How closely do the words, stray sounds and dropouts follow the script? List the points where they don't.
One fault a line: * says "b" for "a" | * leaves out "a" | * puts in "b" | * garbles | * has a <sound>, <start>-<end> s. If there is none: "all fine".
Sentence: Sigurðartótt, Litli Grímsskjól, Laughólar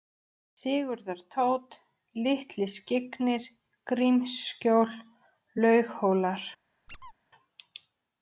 * puts in "Skyggnir"
* has a squeak, 6.9-7.1 s